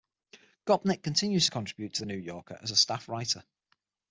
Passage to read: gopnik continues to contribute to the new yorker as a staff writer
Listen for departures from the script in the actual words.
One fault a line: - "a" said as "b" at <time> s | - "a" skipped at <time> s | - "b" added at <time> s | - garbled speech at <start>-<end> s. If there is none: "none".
none